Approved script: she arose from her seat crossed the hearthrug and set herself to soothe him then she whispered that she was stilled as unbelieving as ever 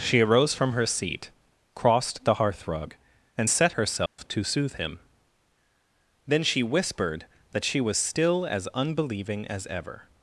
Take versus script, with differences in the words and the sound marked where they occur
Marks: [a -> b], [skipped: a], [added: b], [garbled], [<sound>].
she arose from her seat crossed the hearthrug and set herself [dropout] to soothe him then she whispered that she was [stilled -> still] as unbelieving as ever